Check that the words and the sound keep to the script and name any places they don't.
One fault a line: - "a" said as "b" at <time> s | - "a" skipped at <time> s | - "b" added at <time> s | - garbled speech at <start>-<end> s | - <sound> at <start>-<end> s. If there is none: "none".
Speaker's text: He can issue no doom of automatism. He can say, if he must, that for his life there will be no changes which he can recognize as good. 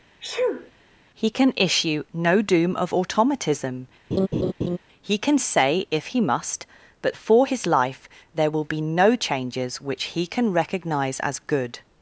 - sneeze at 0.2-0.7 s
- laugh at 4.1-4.8 s
- "that" said as "but" at 7.0 s